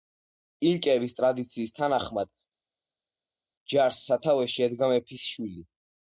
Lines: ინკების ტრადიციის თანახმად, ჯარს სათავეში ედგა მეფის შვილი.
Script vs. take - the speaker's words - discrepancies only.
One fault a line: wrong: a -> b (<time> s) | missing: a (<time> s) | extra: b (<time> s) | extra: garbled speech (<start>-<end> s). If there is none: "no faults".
no faults